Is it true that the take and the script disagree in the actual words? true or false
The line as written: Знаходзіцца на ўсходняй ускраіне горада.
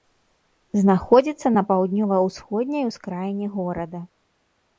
true